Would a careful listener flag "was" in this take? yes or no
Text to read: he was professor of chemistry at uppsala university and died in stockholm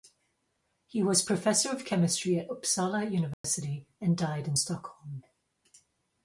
no